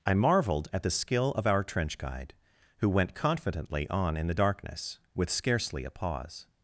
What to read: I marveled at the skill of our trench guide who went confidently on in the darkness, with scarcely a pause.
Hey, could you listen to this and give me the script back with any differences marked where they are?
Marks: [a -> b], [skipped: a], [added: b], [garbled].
I marveled at the skill of our trench guide who went confidently on in the darkness, with scarcely a pause.